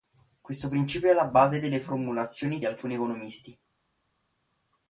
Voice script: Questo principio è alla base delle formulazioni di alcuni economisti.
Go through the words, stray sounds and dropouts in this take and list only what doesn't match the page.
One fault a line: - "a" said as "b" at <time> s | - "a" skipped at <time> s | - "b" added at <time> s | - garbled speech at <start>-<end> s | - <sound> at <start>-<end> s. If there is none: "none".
none